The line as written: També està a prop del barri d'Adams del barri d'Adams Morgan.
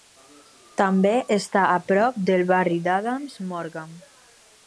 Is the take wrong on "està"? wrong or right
right